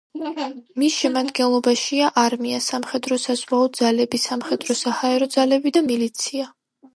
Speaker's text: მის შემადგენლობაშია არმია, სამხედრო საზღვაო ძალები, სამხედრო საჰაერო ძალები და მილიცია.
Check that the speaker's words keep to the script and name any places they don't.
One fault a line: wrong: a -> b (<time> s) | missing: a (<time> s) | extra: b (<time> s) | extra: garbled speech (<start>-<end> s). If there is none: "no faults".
no faults